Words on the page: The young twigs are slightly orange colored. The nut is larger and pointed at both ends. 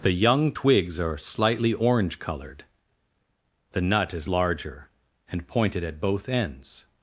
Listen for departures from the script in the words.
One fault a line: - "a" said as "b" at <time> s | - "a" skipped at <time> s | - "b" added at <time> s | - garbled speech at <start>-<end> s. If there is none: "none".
none